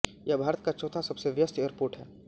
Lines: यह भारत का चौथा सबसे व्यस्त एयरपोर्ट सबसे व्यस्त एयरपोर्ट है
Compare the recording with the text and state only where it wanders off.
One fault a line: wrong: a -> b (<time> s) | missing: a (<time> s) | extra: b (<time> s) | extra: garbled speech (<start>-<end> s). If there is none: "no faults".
missing: सबसे व्यस्त एयरपोर्ट (1.9 s)